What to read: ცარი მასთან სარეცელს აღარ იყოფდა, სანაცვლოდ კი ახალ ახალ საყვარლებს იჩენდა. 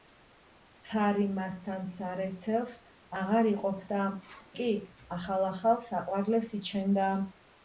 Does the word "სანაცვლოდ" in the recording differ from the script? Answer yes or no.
yes